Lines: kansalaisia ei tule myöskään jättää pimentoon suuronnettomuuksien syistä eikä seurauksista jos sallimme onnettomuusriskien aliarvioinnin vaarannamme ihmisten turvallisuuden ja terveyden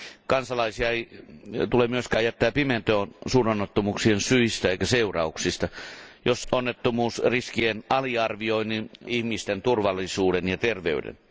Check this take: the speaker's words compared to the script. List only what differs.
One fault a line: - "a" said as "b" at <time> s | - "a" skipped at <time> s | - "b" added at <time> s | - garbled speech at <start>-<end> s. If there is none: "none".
- "sallimme" skipped at 6.4 s
- "vaarannamme" skipped at 8.9 s